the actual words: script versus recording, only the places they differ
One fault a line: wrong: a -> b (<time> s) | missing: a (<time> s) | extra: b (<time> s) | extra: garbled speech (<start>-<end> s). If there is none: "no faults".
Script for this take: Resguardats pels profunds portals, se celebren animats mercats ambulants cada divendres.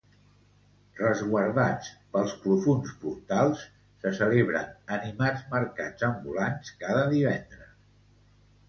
no faults